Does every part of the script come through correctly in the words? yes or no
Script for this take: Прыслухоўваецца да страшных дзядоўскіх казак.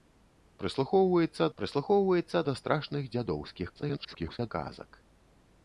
no